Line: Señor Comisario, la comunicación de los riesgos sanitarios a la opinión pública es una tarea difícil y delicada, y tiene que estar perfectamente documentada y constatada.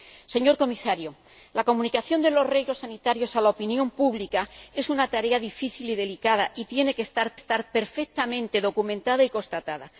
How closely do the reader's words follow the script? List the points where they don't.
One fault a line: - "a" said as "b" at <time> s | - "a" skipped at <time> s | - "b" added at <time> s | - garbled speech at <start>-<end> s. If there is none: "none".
- "estar" added at 7.3 s